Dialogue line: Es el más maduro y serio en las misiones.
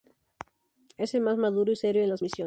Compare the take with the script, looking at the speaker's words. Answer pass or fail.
pass